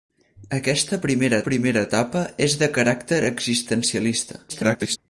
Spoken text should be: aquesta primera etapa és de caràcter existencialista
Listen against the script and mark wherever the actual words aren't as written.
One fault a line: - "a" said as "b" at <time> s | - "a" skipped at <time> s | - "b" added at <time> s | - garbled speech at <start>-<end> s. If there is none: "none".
- "primera" added at 1.5 s
- garbled speech at 4.5-5.0 s